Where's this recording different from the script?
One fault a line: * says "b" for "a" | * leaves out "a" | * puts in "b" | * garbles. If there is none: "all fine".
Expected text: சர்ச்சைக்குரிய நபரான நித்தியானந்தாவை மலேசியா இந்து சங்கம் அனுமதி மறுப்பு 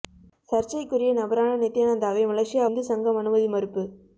all fine